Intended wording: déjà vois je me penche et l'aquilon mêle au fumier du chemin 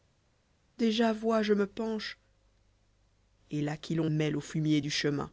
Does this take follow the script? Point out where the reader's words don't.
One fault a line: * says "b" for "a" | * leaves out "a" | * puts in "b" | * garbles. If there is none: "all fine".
all fine